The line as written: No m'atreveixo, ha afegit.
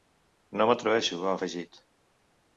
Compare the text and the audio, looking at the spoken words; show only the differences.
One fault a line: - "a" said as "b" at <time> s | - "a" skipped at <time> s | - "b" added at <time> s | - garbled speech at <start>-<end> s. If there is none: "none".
none